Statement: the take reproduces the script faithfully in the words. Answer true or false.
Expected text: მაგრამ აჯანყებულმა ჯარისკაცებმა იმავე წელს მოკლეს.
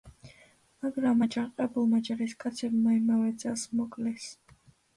true